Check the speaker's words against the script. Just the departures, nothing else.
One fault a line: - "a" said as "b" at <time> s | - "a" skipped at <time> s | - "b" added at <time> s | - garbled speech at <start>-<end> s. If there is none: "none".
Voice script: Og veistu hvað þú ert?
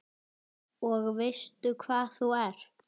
none